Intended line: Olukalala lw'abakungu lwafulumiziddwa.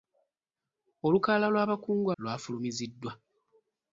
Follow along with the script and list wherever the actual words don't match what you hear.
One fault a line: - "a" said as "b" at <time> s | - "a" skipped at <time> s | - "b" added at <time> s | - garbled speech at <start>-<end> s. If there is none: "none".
none